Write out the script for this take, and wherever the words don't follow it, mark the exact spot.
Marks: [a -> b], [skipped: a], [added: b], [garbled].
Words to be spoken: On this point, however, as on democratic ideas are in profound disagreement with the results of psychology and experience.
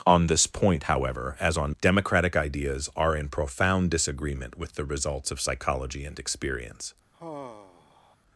On this point, however, as on democratic ideas are in profound disagreement with the results of psychology and experience.